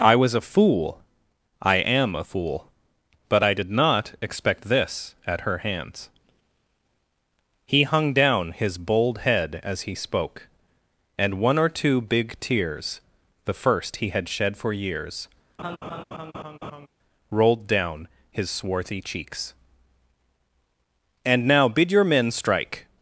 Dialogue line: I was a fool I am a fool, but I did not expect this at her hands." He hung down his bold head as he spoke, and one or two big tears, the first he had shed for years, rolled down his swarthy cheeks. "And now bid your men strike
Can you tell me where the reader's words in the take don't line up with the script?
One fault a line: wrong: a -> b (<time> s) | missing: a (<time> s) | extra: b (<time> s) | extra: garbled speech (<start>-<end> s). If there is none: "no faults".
no faults